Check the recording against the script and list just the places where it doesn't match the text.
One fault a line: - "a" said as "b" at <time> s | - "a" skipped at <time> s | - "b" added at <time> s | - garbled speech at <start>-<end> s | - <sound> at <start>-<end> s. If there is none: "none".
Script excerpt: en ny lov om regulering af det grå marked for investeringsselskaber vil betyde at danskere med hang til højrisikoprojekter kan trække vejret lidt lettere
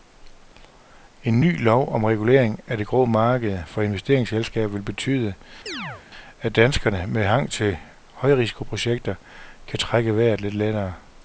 - chirp at 5.7-6.0 s